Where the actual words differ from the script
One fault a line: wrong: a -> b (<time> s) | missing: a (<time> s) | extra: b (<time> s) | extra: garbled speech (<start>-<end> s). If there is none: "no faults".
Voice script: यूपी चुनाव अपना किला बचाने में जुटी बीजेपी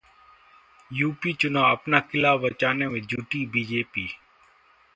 no faults